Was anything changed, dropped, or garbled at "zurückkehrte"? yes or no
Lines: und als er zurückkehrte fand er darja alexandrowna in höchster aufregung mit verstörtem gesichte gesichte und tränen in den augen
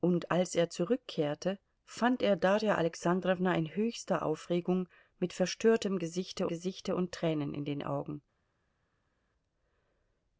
no